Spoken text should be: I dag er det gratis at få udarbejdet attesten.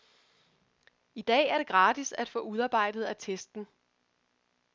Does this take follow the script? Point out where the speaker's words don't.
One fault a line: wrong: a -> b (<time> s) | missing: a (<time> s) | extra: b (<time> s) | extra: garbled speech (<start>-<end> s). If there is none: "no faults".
no faults